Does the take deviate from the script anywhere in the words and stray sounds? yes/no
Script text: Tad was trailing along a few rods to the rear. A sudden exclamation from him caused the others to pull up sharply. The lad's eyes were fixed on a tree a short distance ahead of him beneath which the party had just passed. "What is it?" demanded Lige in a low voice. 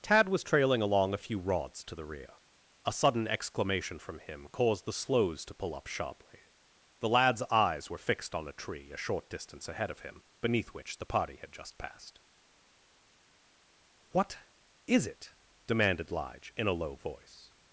yes